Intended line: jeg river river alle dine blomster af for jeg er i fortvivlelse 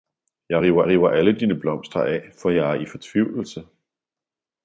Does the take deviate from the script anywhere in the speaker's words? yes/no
no